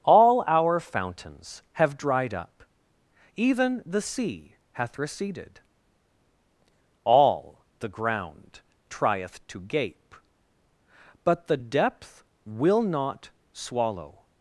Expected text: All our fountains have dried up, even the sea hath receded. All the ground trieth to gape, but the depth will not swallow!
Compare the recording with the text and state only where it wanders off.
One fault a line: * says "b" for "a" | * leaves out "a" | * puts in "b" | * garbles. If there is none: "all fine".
all fine